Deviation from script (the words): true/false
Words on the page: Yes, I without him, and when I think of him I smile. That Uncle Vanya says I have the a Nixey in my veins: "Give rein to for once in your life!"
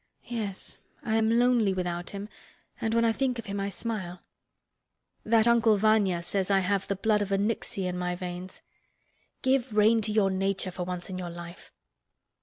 true